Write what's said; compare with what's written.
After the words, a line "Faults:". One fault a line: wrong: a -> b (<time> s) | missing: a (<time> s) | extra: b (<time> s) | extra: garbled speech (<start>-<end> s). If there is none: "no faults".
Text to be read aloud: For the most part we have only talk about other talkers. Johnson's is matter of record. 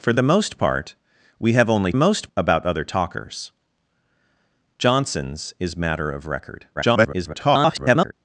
For the most part we have only most about other talkers. Johnson's is matter of record. [garbled]
Faults:
wrong: talk -> most (2.0 s)
extra: garbled speech (6.7-8.1 s)